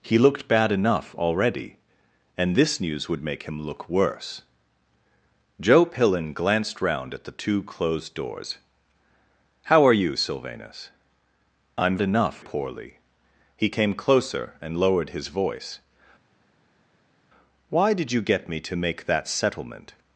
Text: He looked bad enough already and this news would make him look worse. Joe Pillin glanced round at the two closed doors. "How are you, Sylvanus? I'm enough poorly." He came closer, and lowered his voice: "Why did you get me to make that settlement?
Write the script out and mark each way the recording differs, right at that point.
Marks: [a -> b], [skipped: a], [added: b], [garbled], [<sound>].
He looked bad enough already and this news would make him look worse. Joe Pillin glanced round at the two closed doors. "How are you, Sylvanus? I'm enough poorly." He came closer, and lowered his voice: "Why did you get me to make that settlement?